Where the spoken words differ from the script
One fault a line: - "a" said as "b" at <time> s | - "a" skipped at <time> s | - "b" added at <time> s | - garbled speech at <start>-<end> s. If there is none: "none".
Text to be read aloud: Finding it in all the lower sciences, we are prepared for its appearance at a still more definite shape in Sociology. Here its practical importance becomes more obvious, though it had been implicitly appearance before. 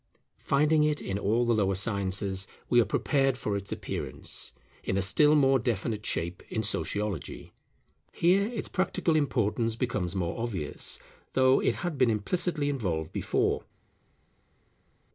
- "at" said as "in" at 4.8 s
- "appearance" said as "involved" at 12.7 s